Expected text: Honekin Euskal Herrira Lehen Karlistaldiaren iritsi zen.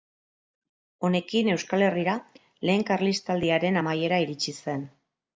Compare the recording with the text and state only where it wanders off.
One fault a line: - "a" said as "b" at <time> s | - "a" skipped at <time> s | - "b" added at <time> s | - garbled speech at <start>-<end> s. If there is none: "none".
- "amaiera" added at 3.8 s